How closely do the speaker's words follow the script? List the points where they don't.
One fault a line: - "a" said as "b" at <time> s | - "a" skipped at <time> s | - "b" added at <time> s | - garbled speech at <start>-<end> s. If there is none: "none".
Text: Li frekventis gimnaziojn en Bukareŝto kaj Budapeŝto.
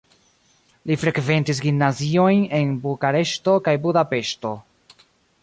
none